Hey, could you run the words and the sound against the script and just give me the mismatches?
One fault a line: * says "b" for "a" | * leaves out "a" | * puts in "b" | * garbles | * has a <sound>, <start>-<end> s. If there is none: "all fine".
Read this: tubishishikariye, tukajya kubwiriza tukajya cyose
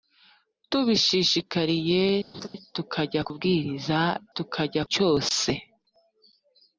* has a laugh, 2.3-2.5 s